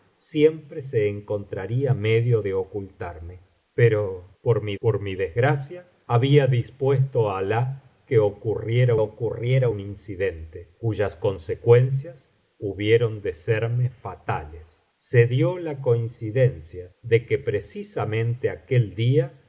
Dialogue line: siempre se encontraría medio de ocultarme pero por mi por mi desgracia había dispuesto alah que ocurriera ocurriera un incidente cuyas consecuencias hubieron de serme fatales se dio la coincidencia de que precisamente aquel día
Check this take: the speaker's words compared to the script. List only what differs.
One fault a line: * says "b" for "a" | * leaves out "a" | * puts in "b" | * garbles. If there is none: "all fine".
all fine